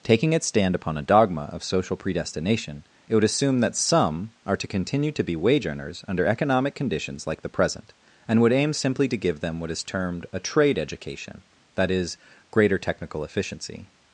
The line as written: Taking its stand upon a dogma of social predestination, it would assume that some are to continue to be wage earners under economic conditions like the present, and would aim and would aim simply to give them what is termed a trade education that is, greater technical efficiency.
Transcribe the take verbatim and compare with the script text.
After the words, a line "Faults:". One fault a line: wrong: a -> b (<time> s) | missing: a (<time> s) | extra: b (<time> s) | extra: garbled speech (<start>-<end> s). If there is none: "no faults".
Taking its stand upon a dogma of social predestination, it would assume that some are to continue to be wage earners under economic conditions like the present, and would aim simply to give them what is termed a trade education that is, greater technical efficiency.
Faults:
missing: and would aim (8.7 s)